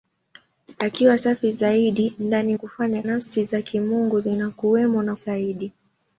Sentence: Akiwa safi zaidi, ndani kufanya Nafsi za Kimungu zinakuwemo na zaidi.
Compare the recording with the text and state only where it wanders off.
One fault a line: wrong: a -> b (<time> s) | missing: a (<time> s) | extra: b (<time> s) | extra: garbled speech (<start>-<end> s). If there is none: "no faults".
no faults